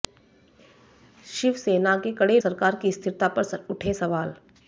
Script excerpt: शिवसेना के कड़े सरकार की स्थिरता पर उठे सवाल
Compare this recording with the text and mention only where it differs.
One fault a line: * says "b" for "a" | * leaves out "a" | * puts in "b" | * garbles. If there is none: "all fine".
all fine